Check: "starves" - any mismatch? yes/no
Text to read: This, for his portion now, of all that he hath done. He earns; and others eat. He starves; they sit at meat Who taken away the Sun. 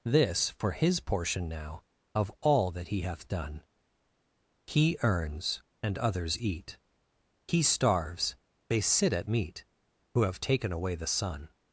no